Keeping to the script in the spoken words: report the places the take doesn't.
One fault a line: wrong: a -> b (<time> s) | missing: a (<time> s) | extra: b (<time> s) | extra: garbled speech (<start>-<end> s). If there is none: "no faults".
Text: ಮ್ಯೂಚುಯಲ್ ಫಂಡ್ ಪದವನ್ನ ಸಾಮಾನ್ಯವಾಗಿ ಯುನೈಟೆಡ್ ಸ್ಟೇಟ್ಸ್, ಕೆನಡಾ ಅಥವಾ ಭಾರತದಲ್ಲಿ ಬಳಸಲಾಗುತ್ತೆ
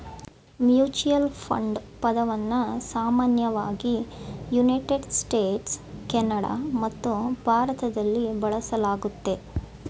wrong: ಅಥವಾ -> ಮತ್ತು (6.8 s)